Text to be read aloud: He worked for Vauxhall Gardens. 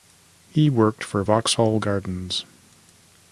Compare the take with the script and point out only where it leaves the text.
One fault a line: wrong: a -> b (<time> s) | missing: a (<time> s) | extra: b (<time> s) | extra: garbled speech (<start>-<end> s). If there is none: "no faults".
no faults